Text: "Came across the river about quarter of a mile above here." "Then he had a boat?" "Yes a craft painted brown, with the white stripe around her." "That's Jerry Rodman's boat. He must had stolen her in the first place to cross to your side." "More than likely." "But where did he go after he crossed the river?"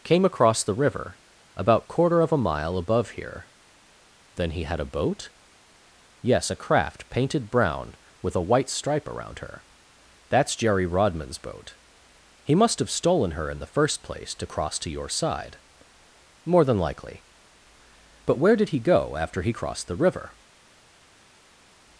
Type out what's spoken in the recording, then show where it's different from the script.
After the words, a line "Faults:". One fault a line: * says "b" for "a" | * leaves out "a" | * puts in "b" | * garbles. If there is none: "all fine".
"Came across the river about quarter of a mile above here." "Then he had a boat?" "Yes a craft painted brown, with a white stripe around her." "That's Jerry Rodman's boat. He must have stolen her in the first place to cross to your side." "More than likely." "But where did he go after he crossed the river?"
Faults:
* says "a" for "the"
* says "have" for "had"